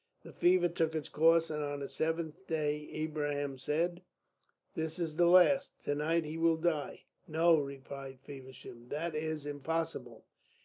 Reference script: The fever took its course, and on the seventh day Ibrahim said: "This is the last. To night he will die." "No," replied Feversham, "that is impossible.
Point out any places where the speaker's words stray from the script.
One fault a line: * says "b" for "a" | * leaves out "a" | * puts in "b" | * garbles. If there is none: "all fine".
all fine